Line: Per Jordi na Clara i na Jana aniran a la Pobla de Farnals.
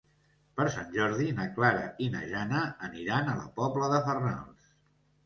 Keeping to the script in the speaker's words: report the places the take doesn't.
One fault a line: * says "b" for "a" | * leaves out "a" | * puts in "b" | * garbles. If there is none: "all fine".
* puts in "Sant"